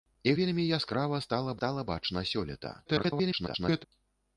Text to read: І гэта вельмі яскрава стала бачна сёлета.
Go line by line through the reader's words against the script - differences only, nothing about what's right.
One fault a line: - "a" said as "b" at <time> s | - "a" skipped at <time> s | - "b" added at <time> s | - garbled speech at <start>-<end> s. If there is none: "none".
- "гэта" skipped at 0.3 s
- "стала" added at 1.6 s
- garbled speech at 2.9-3.8 s